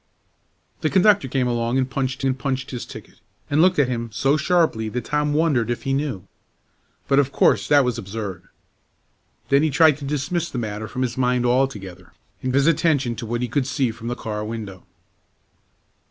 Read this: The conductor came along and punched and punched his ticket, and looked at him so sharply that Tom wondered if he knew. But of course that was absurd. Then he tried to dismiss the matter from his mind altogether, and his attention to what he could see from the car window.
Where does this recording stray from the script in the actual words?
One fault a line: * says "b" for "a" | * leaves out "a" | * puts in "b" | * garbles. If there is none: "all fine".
all fine